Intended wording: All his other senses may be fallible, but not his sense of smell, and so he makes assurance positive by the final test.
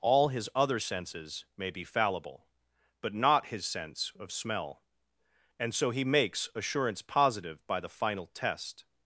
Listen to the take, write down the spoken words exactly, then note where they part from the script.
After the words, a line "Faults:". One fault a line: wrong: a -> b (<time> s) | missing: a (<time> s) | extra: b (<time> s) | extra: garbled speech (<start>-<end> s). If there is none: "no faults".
All his other senses may be fallible, but not his sense of smell, and so he makes assurance positive by the final test.
Faults:
no faults